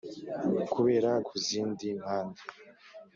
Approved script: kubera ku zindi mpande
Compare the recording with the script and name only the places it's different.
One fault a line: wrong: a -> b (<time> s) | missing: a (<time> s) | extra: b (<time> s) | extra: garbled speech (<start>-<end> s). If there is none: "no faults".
no faults